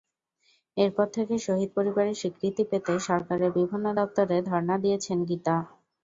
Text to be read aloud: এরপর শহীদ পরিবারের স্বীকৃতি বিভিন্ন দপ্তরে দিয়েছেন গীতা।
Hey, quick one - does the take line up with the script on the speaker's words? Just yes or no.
no